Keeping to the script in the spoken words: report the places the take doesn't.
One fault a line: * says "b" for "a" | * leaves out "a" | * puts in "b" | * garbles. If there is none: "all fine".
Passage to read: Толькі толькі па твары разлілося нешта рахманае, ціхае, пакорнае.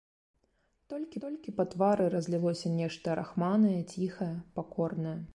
all fine